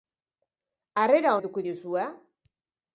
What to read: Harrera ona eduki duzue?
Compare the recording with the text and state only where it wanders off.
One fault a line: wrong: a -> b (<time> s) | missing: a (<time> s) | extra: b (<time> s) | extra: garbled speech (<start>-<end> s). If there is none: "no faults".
missing: ona (1.3 s)